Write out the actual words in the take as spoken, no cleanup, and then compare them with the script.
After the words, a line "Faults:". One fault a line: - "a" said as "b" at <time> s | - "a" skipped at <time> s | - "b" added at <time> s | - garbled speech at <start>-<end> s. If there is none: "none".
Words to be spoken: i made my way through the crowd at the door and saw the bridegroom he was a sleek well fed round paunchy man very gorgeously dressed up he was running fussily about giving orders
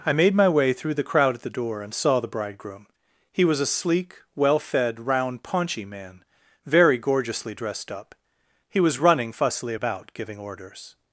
i made my way through the crowd at the door and saw the bridegroom he was a sleek well fed round paunchy man very gorgeously dressed up he was running fussily about giving orders
Faults:
none